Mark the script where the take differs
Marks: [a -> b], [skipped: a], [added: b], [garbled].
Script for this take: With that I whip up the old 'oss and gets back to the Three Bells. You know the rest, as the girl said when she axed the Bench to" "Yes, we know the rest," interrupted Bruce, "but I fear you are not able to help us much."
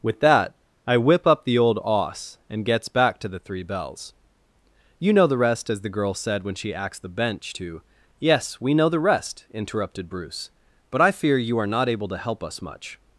With that I whip up the old 'oss and gets back to the Three Bells. You know the rest, as the girl said when she axed the Bench to" "Yes, we know the rest," interrupted Bruce, "but I fear you are not able to help us much."